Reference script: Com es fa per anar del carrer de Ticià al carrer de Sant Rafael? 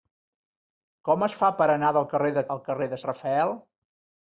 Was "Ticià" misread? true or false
true